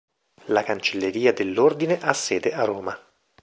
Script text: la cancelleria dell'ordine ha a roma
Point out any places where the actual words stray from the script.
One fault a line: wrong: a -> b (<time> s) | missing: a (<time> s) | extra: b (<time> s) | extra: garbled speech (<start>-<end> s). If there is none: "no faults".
extra: sede (2.1 s)